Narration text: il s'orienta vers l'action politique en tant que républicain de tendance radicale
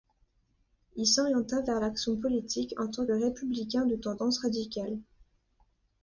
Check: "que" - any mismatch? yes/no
yes